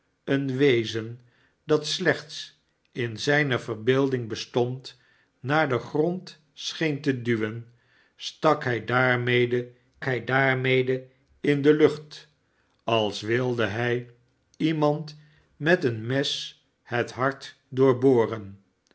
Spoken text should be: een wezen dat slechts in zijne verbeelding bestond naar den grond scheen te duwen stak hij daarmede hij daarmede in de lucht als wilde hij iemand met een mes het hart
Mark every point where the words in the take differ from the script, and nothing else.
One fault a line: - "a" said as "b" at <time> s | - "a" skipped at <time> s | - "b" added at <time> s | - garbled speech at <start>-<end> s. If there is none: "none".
none